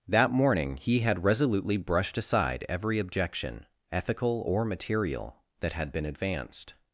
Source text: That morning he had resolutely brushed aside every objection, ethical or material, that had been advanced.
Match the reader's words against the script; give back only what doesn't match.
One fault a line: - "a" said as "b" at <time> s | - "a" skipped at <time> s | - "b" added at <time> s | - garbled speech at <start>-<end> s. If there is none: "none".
none